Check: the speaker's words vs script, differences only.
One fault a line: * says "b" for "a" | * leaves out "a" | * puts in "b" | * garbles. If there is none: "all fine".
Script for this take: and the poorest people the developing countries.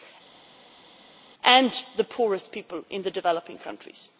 * puts in "in"